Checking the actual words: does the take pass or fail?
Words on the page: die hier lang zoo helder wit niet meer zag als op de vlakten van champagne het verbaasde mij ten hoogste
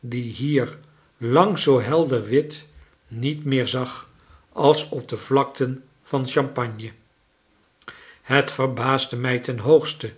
pass